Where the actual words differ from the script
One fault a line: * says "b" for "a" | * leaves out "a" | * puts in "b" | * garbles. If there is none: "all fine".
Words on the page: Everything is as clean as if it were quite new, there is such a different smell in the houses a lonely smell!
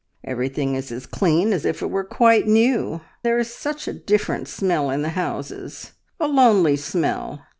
all fine